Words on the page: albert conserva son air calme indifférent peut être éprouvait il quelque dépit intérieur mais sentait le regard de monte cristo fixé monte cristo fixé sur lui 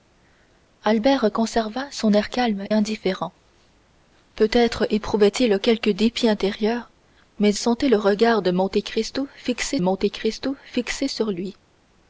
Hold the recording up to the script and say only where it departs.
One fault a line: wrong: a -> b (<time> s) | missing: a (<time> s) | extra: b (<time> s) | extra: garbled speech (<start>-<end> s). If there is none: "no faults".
no faults